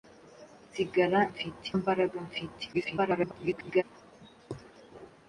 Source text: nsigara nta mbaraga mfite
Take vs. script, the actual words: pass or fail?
fail